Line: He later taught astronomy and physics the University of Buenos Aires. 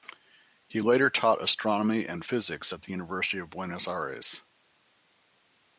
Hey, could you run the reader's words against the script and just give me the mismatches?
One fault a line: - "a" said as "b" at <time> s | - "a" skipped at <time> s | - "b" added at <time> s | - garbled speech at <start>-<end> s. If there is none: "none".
- "at" added at 2.7 s